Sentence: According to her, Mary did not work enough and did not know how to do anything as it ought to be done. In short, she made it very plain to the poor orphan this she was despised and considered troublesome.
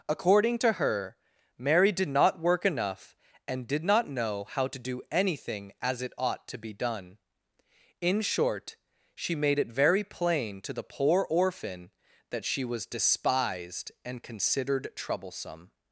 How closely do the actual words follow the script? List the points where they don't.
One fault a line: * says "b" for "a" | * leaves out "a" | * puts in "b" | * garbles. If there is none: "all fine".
* says "that" for "this"